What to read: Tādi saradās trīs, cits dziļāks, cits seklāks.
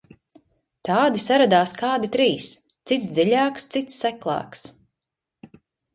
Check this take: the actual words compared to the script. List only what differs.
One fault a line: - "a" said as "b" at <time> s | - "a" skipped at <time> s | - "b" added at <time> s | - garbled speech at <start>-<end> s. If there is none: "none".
- "kādi" added at 1.8 s